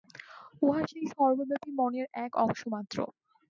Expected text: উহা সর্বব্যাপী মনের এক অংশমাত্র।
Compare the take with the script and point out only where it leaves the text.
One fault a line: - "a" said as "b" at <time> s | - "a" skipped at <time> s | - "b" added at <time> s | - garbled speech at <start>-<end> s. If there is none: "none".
- "সেই" added at 0.9 s